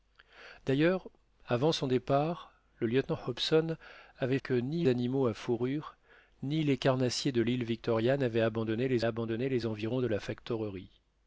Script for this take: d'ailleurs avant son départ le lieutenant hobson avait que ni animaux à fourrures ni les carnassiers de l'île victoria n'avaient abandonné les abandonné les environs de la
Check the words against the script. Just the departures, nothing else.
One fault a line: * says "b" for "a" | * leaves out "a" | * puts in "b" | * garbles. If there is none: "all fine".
all fine